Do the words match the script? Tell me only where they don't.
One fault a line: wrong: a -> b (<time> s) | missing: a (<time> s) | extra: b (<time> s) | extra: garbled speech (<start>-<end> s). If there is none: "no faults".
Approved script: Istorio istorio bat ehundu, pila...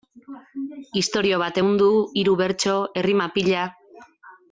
missing: istorio (1.4 s)
extra: hiru bertso errima (2.2 s)